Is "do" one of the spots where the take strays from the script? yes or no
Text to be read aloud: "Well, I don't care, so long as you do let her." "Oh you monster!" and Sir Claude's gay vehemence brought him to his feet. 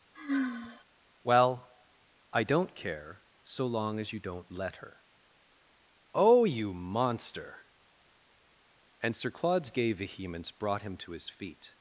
yes